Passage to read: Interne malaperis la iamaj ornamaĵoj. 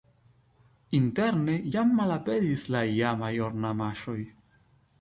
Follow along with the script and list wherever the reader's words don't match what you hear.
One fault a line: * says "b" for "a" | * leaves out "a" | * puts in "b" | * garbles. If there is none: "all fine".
* puts in "jam"